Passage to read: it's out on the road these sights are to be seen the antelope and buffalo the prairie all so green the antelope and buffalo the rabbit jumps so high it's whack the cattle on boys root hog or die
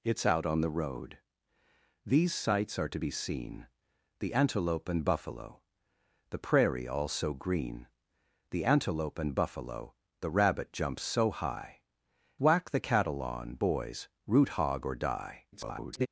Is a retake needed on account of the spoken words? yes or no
yes